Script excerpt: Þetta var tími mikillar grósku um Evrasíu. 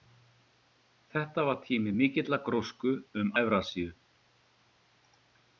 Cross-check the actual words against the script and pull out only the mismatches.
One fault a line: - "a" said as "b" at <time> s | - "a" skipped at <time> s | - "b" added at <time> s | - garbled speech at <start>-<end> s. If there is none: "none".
none